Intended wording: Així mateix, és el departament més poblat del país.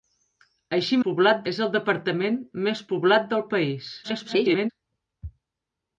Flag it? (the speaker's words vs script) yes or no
yes